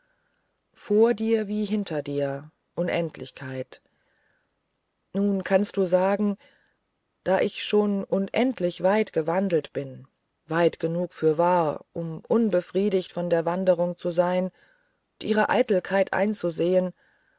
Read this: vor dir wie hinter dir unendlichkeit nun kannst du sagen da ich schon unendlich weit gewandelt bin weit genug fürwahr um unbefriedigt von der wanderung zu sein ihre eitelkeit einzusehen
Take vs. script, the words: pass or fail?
pass